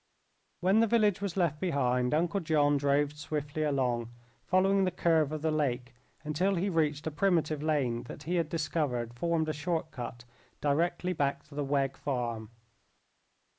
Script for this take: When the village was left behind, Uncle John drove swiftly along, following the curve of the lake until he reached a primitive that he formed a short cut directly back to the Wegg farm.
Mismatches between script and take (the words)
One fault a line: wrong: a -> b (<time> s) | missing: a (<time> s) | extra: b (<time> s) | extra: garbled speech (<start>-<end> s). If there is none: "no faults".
extra: lane (7.6 s)
extra: had discovered (8.4 s)